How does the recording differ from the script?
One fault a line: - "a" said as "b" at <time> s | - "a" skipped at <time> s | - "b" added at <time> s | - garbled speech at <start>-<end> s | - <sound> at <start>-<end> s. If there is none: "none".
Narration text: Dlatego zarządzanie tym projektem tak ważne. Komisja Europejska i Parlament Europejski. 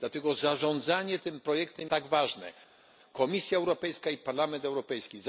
none